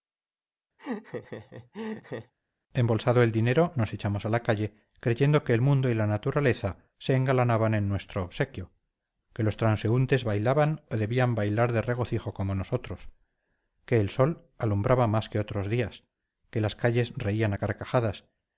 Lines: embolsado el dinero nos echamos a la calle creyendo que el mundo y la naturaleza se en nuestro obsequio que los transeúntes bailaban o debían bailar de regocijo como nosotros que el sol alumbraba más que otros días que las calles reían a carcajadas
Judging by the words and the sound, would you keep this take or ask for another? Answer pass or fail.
fail